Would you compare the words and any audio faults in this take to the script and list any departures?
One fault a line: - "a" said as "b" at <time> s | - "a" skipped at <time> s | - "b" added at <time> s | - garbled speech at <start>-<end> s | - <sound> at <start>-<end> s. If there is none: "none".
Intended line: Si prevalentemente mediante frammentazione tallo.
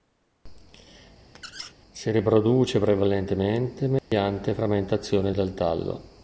- squeak at 1.3-1.7 s
- "riproduce" added at 2.1 s
- dropout at 4.0-4.1 s
- "del" added at 5.3 s